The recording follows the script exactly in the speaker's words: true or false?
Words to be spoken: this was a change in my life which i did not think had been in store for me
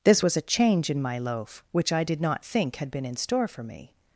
false